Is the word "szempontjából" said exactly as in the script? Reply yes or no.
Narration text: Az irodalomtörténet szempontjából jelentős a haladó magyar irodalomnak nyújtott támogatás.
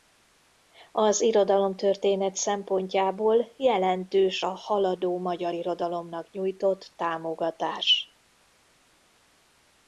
yes